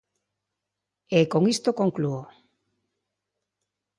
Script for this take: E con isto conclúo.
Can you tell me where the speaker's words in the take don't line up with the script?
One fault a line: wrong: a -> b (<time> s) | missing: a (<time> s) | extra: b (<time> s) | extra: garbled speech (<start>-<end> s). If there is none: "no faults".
no faults